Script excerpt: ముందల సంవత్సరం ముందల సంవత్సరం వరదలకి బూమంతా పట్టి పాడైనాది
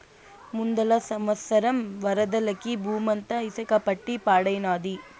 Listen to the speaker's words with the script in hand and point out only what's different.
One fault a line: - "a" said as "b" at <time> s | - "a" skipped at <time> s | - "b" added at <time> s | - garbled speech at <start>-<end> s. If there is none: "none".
- "ముందల సంవత్సరం" skipped at 1.8 s
- "ఇసక" added at 3.5 s